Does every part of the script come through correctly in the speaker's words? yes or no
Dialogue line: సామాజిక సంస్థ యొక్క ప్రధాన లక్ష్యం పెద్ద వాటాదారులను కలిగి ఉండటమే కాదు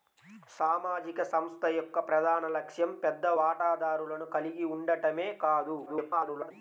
no